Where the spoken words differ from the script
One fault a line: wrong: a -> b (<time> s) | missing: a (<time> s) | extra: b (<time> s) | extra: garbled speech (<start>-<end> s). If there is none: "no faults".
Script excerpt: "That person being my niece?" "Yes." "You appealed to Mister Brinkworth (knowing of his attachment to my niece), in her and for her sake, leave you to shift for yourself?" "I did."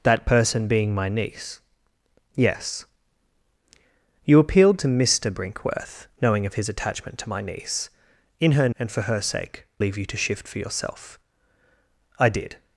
no faults